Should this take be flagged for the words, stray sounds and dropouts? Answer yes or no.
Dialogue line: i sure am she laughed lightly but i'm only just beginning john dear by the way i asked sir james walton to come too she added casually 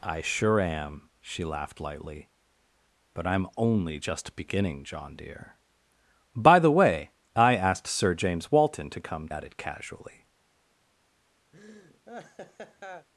yes